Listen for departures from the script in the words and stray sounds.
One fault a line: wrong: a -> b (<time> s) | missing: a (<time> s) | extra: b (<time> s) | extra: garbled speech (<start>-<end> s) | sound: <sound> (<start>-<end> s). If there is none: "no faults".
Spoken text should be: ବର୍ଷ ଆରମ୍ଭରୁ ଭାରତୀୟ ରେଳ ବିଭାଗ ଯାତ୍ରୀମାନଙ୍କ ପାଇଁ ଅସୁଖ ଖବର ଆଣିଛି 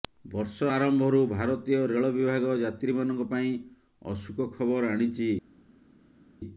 no faults